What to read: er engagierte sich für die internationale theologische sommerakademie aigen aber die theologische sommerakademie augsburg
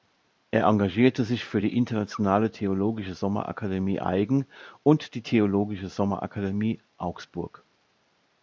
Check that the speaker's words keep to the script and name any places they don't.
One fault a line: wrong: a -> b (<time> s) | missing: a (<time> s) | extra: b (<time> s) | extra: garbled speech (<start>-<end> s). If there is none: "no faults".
wrong: aber -> und (4.8 s)